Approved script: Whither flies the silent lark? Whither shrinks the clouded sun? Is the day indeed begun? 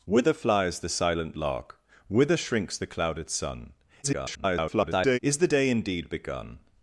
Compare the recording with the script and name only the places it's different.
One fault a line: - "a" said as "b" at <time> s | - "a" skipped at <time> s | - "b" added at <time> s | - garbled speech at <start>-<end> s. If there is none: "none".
- garbled speech at 4.0-5.2 s